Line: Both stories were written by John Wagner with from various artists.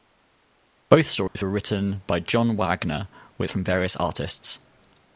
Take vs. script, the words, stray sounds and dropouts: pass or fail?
fail